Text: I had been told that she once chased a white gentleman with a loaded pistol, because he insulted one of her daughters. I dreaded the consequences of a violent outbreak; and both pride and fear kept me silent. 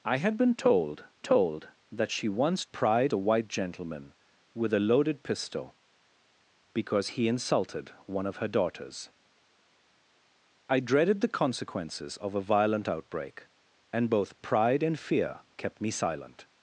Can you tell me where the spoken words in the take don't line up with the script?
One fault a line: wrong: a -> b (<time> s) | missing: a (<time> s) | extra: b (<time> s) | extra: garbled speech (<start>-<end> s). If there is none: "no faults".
extra: told (1.2 s)
wrong: chased -> pride (2.7 s)